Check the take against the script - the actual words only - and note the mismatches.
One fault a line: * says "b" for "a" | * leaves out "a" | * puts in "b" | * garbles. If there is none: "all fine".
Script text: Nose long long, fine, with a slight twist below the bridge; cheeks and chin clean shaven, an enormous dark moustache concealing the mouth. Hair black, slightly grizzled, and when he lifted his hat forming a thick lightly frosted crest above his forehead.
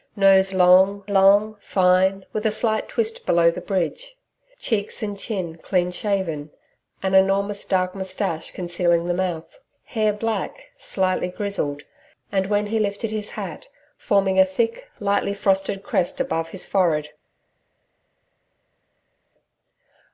all fine